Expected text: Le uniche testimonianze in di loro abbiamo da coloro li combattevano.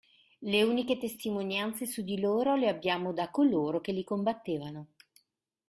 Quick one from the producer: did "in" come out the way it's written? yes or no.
no